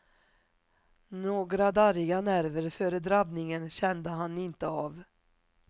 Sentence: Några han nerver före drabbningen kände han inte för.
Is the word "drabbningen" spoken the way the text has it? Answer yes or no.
yes